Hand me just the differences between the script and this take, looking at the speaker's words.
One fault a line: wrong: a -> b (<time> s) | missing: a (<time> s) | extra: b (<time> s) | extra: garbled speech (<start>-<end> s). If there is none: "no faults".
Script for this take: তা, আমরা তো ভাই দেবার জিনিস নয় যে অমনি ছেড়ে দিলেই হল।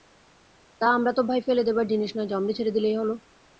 extra: ফেলে (1.4 s)